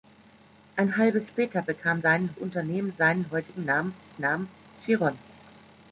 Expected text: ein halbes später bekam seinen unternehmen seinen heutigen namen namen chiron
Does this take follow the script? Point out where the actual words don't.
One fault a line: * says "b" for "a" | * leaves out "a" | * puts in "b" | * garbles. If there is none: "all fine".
all fine